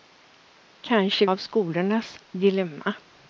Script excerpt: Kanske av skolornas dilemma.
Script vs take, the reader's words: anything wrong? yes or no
no